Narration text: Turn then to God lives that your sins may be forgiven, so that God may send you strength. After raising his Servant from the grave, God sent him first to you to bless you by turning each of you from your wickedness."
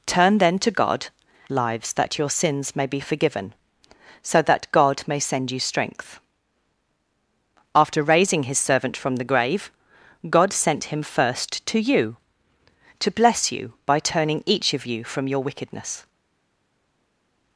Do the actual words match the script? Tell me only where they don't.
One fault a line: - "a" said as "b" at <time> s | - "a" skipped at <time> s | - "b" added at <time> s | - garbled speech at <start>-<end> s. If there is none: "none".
none